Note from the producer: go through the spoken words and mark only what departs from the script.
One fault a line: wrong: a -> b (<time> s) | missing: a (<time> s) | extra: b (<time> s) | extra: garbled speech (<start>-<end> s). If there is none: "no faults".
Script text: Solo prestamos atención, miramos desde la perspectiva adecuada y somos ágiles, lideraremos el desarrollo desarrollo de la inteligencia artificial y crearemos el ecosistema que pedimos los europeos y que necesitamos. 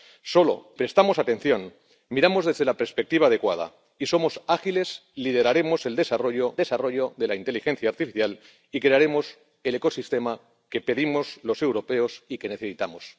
no faults